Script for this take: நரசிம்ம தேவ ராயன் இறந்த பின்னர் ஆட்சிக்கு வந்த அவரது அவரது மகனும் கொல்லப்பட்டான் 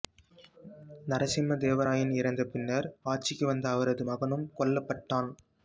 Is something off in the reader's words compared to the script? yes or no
yes